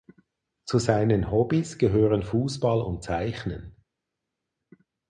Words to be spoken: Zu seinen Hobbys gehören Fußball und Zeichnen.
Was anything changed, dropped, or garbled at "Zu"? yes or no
no